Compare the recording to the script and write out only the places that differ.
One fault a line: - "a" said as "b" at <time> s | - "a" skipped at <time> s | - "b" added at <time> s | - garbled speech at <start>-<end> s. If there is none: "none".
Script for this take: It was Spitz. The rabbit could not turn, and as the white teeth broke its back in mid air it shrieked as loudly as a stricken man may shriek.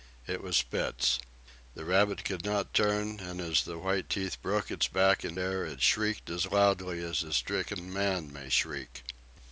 - "mid" skipped at 5.4 s